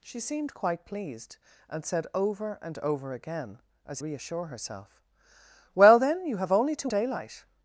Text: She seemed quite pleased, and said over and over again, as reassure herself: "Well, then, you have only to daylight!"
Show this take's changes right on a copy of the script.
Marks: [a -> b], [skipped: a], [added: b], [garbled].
She seemed quite pleased, and said over and over again, as reassure herself: "Well, then, you have only to daylight!"